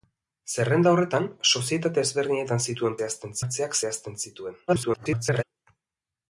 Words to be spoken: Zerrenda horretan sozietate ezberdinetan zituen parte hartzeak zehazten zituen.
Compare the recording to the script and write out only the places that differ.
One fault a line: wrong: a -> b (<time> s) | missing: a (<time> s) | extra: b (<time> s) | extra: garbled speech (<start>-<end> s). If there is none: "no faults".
wrong: parte -> zehazten (3.0 s)
extra: garbled speech (4.7-5.4 s)